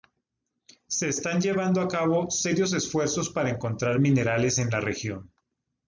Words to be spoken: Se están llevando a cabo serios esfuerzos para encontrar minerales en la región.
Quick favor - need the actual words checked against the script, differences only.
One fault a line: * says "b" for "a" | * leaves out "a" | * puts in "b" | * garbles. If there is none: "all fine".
all fine